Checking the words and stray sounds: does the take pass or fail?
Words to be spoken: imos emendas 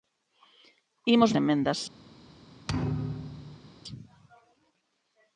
fail